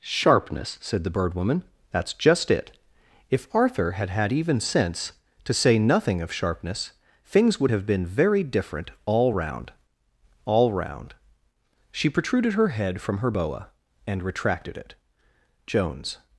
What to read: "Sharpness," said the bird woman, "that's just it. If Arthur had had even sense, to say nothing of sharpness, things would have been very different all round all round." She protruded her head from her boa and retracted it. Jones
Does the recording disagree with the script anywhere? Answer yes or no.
no